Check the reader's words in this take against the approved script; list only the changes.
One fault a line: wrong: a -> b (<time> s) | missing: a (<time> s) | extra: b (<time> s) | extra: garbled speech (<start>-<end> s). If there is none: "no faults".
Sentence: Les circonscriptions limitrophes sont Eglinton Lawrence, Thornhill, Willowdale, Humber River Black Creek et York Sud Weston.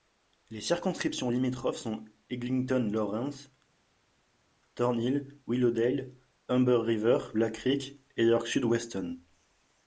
no faults